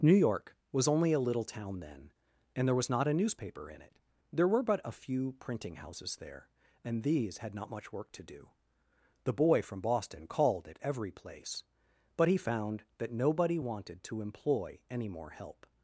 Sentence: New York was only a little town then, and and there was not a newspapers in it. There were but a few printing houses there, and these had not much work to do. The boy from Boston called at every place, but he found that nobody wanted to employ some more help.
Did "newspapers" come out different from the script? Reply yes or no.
yes